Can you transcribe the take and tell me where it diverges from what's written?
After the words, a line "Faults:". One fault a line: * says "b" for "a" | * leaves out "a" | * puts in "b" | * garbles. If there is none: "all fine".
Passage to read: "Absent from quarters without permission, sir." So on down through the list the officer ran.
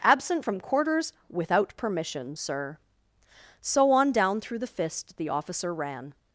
"Absent from quarters without permission, sir." So on down through the fist the officer ran.
Faults:
* says "fist" for "list"